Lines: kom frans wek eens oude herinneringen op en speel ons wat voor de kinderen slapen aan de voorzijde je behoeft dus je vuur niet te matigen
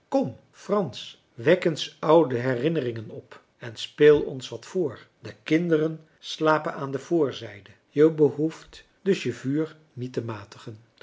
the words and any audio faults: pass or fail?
pass